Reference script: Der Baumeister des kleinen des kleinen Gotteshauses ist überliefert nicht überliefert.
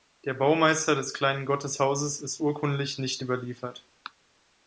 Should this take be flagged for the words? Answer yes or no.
yes